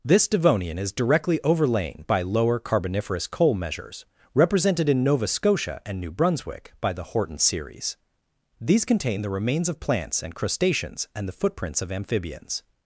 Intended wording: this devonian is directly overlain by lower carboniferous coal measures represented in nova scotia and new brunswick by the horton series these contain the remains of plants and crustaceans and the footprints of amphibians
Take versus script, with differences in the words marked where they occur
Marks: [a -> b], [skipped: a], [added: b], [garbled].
this devonian is directly overlain by lower carboniferous coal measures represented in nova scotia and new brunswick by the horton series these contain the remains of plants and crustaceans and the footprints of amphibians